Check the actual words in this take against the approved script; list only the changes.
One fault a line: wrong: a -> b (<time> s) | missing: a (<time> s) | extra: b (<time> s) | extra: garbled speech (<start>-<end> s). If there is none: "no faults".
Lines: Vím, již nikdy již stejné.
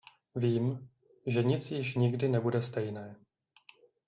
extra: že nic (1.3 s)
wrong: již -> nebude (2.3 s)